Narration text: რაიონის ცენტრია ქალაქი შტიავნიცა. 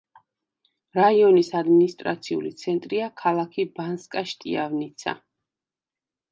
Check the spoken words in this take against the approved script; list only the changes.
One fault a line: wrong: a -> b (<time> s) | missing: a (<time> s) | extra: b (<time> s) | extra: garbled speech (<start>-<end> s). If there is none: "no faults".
extra: ადმინისტრაციული (1.6 s)
extra: ბანსკა (3.8 s)